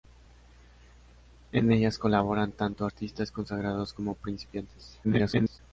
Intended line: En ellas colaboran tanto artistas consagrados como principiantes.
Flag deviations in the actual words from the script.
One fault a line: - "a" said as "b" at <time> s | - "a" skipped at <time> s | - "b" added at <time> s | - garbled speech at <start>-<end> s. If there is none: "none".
- garbled speech at 5.0-5.6 s